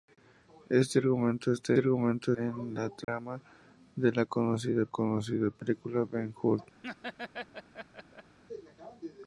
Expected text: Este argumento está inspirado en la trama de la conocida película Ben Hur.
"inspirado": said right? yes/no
no